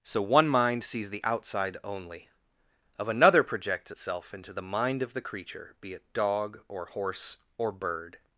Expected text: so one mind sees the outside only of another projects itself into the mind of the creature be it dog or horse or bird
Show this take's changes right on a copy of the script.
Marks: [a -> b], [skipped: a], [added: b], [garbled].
so one mind sees the outside only of another projects itself into the mind of the creature be it dog or horse or bird